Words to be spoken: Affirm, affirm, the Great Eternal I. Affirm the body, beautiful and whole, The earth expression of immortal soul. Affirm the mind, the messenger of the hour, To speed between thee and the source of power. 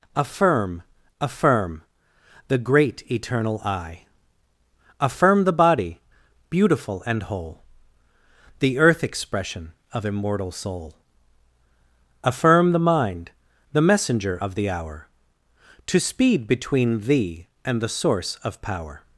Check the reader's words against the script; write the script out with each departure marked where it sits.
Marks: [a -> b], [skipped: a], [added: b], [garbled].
Affirm, affirm, the Great Eternal I. Affirm the body, beautiful and whole, The earth expression of immortal soul. Affirm the mind, the messenger of the hour, To speed between thee and the source of power.